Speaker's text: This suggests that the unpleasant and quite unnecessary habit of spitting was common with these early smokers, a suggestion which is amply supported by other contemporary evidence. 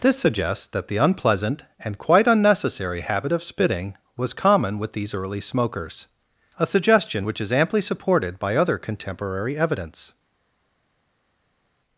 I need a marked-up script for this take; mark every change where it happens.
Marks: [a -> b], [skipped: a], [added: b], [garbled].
This suggests that the unpleasant and quite unnecessary habit of spitting was common with these early smokers, a suggestion which is amply supported by other contemporary evidence.